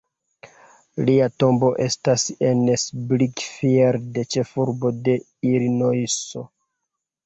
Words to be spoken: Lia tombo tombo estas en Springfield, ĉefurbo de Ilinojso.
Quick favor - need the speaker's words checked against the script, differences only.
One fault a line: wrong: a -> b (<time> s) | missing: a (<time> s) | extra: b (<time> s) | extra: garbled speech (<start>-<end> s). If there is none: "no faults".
missing: tombo (1.7 s)